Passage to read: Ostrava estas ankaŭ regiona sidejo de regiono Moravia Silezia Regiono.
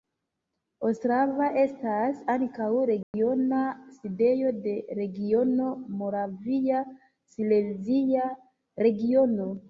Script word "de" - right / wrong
right